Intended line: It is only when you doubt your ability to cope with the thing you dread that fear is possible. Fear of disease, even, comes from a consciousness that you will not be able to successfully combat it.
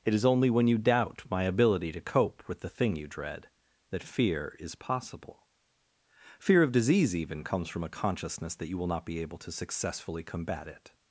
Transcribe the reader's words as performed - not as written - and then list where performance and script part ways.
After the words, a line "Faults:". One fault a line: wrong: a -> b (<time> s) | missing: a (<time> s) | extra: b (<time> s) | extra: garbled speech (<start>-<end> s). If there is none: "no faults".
It is only when you doubt my ability to cope with the thing you dread that fear is possible. Fear of disease, even, comes from a consciousness that you will not be able to successfully combat it.
Faults:
wrong: your -> my (1.3 s)